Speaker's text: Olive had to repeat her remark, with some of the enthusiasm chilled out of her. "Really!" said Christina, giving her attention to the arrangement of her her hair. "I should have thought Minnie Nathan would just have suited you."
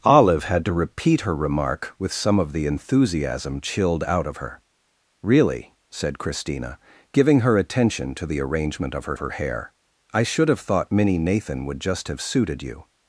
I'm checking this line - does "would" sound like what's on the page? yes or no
yes